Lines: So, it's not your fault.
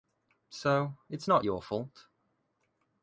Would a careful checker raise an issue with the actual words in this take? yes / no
no